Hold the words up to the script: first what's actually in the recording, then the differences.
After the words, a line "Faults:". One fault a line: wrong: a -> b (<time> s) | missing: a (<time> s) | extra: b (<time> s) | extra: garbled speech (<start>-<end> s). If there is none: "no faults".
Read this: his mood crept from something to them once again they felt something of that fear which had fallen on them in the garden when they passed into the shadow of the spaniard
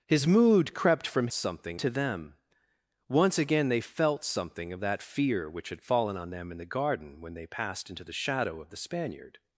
his mood crept from something to them once again they felt something of that fear which had fallen on them in the garden when they passed into the shadow of the spaniard
Faults:
no faults